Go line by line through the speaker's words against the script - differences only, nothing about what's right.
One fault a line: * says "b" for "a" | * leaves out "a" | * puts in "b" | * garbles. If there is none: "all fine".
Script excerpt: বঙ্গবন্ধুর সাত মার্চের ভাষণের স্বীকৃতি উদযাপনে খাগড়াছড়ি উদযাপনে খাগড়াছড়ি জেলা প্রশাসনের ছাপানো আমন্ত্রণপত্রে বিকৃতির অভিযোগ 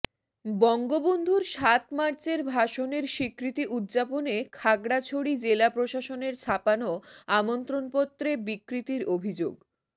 * leaves out "উদযাপনে খাগড়াছড়ি"